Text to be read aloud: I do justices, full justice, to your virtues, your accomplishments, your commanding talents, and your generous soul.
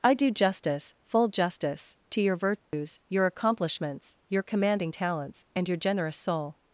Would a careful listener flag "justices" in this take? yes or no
yes